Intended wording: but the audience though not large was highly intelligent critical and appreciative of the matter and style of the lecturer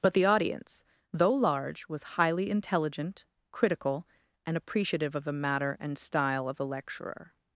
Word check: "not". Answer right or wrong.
wrong